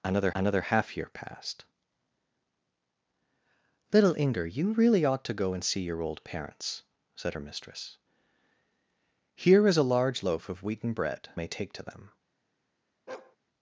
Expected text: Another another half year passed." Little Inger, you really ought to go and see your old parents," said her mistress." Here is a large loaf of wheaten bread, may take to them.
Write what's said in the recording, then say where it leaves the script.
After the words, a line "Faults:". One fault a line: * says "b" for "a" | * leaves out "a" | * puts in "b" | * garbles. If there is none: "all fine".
Another another half year passed." Little Inger, you really ought to go and see your old parents," said her mistress." Here is a large loaf of wheaten bread, may take to them.
Faults:
all fine